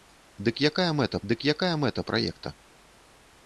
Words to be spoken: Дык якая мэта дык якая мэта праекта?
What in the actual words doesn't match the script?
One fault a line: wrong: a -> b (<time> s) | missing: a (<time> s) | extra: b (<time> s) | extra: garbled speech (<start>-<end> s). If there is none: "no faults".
no faults